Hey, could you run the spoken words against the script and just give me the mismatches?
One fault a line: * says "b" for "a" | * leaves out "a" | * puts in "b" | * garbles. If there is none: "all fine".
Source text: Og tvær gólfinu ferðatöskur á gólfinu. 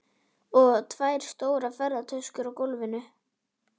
* says "stórar" for "gólfinu"